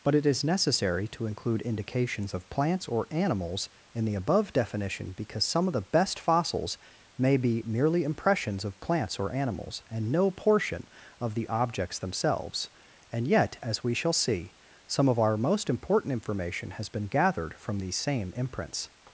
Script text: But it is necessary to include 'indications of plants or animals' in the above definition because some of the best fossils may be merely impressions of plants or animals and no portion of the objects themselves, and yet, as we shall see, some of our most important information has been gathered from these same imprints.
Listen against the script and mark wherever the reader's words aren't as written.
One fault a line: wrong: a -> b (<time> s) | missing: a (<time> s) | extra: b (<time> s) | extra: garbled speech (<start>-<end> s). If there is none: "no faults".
no faults